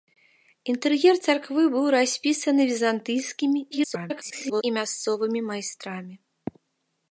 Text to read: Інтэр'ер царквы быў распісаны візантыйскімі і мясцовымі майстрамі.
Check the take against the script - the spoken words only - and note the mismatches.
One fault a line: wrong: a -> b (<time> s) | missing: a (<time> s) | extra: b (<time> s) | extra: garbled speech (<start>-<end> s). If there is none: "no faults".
extra: garbled speech (3.7-4.6 s)